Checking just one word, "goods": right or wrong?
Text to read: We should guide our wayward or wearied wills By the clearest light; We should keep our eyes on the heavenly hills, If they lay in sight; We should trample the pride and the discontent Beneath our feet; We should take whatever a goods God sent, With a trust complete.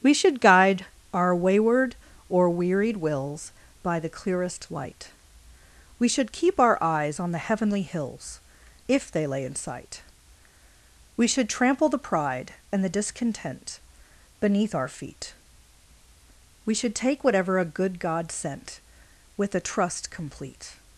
wrong